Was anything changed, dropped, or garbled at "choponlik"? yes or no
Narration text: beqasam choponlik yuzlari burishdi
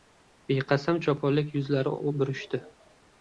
no